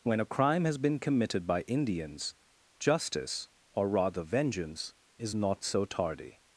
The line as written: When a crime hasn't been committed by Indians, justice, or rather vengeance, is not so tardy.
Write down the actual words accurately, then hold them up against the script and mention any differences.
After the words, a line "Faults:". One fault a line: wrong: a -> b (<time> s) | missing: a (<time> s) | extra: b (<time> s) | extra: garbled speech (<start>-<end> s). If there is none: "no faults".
When a crime has been committed by Indians, justice, or rather vengeance, is not so tardy.
Faults:
wrong: hasn't -> has (0.7 s)